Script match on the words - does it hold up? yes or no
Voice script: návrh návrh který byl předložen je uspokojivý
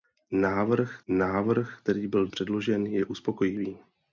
yes